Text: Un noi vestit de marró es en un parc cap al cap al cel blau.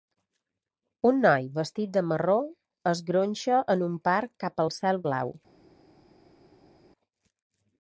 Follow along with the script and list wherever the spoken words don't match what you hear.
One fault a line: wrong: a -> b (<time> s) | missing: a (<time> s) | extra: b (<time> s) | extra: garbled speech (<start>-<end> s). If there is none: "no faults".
extra: gronxa (3.1 s)
missing: cap al (4.8 s)